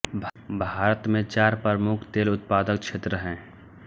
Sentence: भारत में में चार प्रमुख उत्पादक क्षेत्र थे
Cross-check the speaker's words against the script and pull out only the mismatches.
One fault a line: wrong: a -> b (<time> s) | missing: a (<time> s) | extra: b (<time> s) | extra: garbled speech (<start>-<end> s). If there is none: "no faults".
missing: में (1.2 s)
extra: तेल (2.1 s)
wrong: थे -> हैं (3.1 s)